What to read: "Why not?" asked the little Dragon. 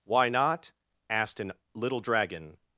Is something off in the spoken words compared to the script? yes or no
yes